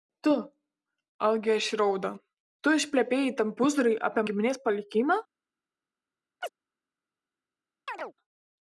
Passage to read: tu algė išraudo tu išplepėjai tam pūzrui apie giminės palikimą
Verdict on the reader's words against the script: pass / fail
pass